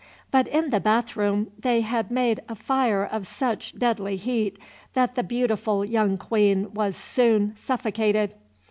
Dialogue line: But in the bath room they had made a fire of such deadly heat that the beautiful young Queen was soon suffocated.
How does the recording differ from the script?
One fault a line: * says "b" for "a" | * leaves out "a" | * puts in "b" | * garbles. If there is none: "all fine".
all fine